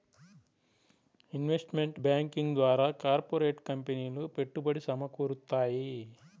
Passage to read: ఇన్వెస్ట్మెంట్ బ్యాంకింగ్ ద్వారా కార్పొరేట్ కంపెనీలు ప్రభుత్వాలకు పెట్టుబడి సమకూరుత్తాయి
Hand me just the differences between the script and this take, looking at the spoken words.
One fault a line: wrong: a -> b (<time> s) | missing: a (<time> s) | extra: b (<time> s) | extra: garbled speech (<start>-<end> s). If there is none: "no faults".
missing: ప్రభుత్వాలకు (4.2 s)